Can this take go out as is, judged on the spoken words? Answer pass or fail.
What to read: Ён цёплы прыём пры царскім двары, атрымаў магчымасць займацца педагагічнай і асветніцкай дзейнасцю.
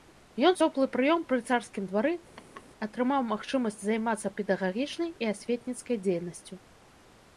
pass